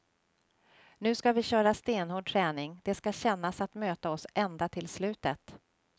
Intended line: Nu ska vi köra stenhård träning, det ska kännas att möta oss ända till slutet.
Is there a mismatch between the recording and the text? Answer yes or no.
no